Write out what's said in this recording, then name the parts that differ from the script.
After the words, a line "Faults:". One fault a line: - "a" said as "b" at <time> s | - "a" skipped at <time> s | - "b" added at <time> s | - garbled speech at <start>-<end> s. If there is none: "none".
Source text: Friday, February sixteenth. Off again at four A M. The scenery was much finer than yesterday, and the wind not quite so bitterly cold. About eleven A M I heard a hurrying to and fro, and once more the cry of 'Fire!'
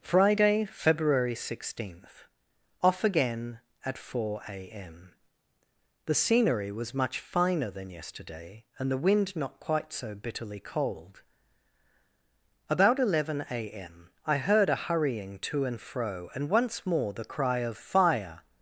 Friday, February sixteenth. Off again at four A M. The scenery was much finer than yesterday, and the wind not quite so bitterly cold. About eleven A M I heard a hurrying to and fro, and once more the cry of 'Fire!'
Faults:
none